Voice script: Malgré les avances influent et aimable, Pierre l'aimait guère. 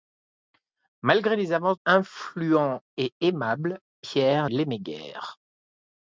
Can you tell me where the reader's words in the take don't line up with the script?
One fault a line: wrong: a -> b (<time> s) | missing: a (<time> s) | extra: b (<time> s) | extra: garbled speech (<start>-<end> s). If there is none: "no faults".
no faults